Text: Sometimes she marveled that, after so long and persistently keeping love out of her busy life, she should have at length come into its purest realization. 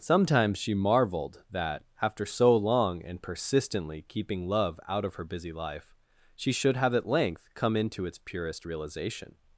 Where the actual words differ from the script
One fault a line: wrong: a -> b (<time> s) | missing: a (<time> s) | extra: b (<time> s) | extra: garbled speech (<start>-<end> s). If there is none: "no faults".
no faults